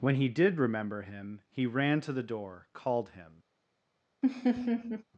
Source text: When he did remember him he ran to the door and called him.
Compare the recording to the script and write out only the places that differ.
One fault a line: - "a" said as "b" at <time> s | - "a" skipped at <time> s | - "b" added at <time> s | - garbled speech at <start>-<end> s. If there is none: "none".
- "and" skipped at 2.6 s